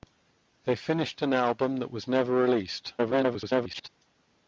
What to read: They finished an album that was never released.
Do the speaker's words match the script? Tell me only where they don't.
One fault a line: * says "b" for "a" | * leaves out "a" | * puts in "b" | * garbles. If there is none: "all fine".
* garbles